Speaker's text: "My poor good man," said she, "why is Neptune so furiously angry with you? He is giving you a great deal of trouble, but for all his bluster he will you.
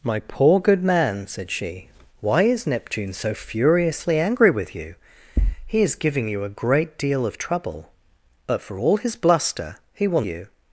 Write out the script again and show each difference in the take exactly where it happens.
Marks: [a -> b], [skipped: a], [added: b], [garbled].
"My poor good man," said she, "why is Neptune so furiously angry with you? He is giving you a great deal of trouble, but for all his bluster he will you.